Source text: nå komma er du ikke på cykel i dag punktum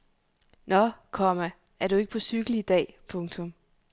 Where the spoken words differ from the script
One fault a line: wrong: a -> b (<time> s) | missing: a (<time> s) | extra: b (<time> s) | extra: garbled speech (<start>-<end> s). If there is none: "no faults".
no faults